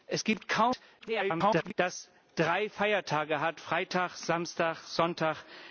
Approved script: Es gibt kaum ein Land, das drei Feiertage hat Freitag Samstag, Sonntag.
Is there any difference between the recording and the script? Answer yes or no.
yes